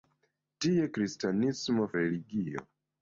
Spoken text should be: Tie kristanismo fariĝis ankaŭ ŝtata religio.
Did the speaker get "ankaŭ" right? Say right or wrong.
wrong